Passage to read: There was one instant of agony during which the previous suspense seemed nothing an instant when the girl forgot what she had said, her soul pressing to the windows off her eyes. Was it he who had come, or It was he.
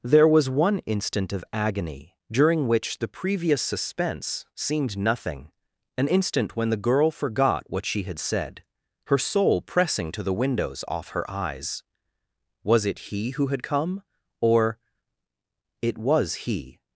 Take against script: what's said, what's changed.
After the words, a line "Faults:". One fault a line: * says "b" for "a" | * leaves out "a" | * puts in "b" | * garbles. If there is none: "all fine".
There was one instant of agony during which the previous suspense seemed nothing an instant when the girl forgot what she had said, her soul pressing to the windows off her eyes. Was it he who had come, or It was he.
Faults:
all fine